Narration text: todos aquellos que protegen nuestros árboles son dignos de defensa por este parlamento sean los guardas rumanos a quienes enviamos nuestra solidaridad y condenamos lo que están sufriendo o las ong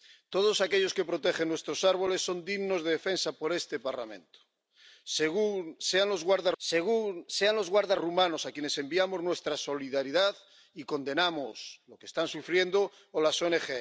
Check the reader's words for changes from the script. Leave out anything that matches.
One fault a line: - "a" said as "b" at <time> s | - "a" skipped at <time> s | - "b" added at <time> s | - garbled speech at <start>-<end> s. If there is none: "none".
- "sean los guardas" added at 6.6 s